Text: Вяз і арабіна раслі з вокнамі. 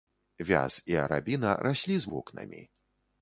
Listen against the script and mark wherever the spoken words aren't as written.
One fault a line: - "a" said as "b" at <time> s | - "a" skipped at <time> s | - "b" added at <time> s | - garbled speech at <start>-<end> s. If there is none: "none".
none